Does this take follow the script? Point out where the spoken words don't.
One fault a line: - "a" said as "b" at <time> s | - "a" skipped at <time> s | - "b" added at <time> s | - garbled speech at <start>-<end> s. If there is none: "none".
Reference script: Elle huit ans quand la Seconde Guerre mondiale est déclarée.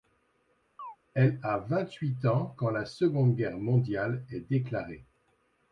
- "a vingt" added at 1.4 s